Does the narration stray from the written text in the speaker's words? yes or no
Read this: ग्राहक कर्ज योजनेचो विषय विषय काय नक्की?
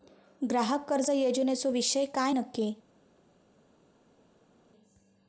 yes